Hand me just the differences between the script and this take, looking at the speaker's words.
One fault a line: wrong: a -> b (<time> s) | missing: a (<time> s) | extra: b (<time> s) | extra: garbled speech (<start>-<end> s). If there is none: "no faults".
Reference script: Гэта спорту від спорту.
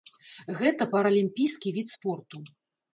wrong: спорту -> паралімпійскі (0.9 s)